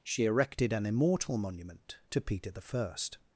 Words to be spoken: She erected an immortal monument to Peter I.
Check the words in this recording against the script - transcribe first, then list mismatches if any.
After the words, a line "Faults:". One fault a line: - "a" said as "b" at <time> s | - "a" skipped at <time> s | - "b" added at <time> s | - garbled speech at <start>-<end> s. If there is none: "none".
She erected an immortal monument to Peter I.
Faults:
none